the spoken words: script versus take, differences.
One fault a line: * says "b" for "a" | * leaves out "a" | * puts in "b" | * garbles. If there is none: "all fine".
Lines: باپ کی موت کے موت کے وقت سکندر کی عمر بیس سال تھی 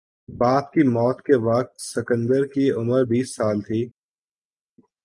* leaves out "موت کے"